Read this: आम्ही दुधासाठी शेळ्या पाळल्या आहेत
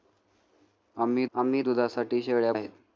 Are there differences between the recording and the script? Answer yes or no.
yes